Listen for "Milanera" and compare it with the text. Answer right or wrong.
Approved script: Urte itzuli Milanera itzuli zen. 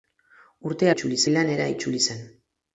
right